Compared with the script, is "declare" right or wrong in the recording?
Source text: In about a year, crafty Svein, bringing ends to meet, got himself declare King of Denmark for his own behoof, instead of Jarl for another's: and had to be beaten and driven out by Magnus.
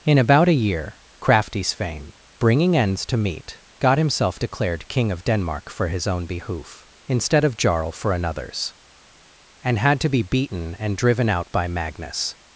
wrong